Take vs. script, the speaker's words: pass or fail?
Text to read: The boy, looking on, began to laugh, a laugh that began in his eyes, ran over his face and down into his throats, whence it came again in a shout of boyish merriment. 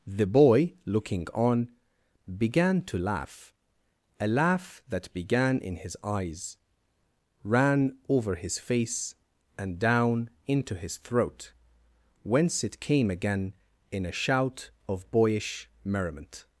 fail